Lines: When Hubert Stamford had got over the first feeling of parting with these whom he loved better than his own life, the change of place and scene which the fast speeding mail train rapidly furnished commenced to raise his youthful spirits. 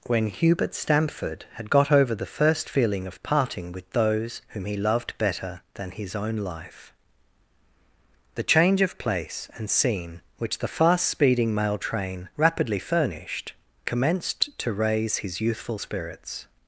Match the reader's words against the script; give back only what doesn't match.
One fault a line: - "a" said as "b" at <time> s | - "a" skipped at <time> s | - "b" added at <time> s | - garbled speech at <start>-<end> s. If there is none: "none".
- "these" said as "those" at 3.9 s